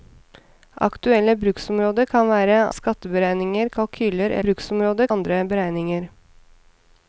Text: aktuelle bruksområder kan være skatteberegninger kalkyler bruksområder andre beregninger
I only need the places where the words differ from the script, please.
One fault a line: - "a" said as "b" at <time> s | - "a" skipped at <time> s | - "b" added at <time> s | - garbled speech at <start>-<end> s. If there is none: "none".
none